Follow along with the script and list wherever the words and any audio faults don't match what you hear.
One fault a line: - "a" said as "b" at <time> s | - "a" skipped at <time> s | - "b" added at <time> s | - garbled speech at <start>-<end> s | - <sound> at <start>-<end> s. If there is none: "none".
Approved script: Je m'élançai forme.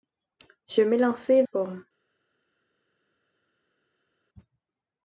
none